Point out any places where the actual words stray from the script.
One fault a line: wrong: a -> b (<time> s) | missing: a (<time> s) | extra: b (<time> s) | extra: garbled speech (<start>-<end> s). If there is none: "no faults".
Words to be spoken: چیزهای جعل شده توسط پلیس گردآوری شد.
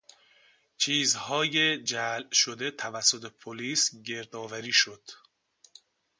no faults